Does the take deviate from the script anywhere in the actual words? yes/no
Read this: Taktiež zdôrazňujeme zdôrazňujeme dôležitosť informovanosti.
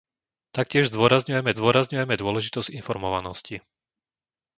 no